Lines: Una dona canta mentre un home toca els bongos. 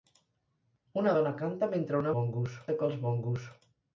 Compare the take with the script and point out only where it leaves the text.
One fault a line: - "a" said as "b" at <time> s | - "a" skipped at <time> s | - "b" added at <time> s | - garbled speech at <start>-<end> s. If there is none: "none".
- "home" said as "bongos" at 2.2 s